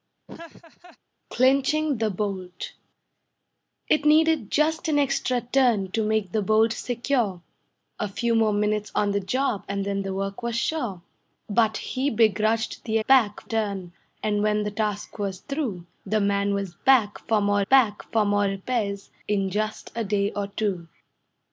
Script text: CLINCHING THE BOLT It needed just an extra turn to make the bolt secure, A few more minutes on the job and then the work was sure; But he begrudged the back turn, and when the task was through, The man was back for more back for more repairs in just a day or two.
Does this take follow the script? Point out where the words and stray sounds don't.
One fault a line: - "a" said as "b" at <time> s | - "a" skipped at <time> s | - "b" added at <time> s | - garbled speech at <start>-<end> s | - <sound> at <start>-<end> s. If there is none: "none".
- laugh at 0.3-1.0 s